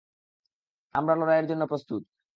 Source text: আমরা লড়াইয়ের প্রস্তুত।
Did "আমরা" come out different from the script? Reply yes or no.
no